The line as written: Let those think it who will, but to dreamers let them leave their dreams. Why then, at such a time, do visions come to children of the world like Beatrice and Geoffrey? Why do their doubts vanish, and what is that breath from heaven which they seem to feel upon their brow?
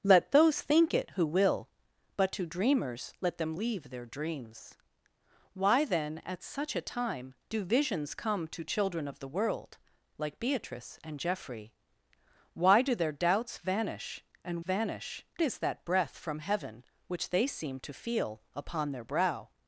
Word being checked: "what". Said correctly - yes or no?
no